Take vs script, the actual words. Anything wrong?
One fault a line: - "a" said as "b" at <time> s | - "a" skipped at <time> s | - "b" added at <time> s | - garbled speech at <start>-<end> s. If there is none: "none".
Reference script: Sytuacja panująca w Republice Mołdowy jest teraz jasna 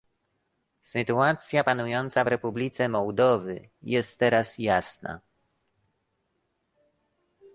none